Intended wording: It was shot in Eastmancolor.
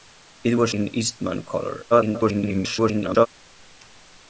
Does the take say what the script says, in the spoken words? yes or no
no